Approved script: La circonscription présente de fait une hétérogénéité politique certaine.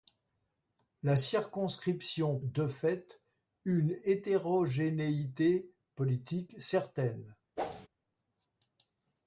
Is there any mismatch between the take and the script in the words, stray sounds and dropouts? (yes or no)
yes